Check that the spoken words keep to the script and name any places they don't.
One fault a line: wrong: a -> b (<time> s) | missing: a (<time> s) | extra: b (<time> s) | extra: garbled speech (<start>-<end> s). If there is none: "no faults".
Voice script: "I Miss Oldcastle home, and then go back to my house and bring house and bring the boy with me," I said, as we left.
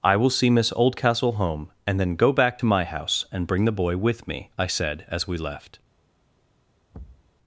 extra: will see (0.1 s)
missing: house and bring (3.6 s)